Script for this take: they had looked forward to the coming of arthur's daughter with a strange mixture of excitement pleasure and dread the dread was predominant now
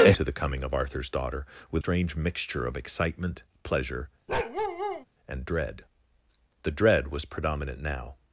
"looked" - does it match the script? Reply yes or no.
no